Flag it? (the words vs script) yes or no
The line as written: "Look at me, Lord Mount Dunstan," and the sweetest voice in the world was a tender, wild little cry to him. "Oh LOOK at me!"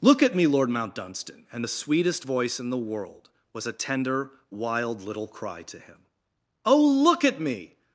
no